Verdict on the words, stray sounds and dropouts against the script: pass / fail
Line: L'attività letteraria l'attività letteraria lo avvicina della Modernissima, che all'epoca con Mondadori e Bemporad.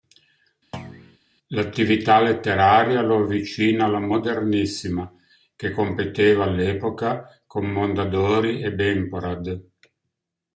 fail